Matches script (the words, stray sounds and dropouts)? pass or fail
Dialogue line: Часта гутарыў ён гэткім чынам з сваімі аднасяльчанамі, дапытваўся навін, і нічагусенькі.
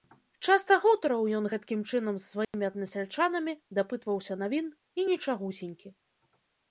fail